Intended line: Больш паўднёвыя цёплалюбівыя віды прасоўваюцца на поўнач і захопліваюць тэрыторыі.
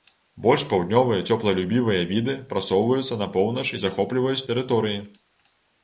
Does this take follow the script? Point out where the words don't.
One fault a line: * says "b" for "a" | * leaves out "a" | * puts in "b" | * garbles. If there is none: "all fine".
all fine